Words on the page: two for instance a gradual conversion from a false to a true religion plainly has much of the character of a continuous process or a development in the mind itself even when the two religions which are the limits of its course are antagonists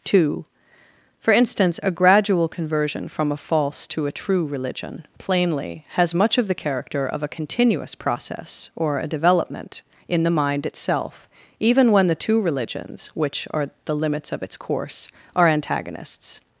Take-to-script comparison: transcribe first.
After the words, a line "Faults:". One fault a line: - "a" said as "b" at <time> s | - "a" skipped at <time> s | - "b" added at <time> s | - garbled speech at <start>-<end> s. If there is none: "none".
two for instance a gradual conversion from a false to a true religion plainly has much of the character of a continuous process or a development in the mind itself even when the two religions which are the limits of its course are antagonists
Faults:
none